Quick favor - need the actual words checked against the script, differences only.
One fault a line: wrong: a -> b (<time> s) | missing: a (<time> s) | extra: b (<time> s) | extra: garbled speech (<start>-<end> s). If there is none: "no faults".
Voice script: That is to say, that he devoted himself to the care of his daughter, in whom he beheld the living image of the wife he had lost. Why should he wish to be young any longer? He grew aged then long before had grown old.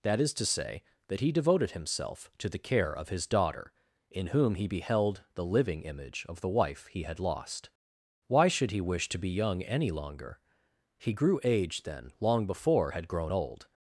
no faults